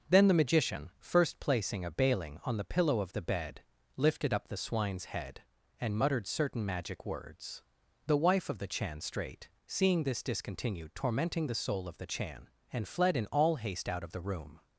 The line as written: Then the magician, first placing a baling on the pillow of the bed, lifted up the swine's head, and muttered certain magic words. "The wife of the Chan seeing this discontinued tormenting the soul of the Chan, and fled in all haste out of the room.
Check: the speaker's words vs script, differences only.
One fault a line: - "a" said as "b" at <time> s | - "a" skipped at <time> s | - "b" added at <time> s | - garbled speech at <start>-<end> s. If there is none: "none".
- "strait" added at 9.0 s